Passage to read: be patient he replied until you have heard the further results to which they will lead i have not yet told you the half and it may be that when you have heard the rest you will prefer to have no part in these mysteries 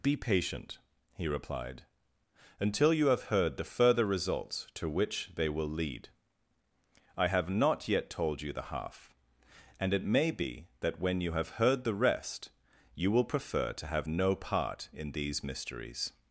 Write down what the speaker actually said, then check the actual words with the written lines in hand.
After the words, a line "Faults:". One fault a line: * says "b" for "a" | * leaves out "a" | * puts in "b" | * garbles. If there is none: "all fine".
be patient he replied until you have heard the further results to which they will lead i have not yet told you the half and it may be that when you have heard the rest you will prefer to have no part in these mysteries
Faults:
all fine